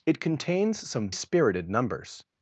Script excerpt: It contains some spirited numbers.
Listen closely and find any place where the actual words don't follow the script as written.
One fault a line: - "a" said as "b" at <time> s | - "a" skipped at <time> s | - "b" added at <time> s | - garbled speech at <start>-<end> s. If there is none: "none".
none